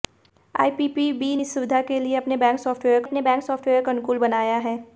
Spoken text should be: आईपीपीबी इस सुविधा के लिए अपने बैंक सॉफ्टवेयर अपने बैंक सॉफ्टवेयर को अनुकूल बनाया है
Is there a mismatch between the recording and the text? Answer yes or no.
no